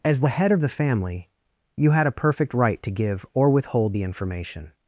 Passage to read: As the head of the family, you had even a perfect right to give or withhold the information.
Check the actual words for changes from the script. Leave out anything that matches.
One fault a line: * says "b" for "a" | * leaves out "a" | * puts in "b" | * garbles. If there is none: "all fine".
* leaves out "even"